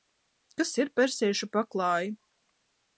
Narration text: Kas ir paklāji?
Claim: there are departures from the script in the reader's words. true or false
true